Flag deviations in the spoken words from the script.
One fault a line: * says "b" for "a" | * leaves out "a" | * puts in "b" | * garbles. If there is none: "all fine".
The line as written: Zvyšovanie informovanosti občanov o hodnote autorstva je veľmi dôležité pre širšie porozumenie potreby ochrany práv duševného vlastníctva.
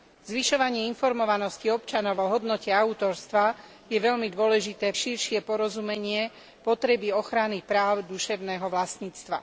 * leaves out "pre"